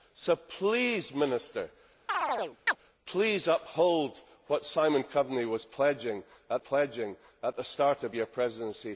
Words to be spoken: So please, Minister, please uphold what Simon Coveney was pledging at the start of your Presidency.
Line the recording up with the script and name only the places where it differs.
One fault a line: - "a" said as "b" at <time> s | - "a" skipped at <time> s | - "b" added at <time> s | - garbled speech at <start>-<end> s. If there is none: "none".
- "pledging at" added at 6.6 s